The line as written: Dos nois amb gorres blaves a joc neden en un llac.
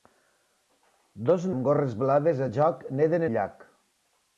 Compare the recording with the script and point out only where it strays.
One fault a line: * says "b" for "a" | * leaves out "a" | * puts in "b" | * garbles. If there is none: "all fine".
* leaves out "nois"
* leaves out "en"